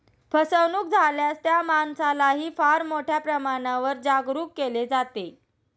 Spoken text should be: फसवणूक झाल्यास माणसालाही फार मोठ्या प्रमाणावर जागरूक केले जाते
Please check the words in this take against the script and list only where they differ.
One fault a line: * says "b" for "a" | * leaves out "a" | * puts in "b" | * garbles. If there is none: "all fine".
* puts in "त्या"